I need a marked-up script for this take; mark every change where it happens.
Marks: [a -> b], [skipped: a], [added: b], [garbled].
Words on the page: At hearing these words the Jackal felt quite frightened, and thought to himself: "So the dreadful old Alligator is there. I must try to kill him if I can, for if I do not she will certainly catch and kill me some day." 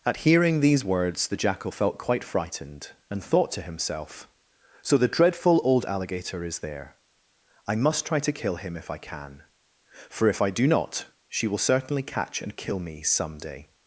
At hearing these words the Jackal felt quite frightened, and thought to himself: "So the dreadful old Alligator is there. I must try to kill him if I can, for if I do not she will certainly catch and kill me some day."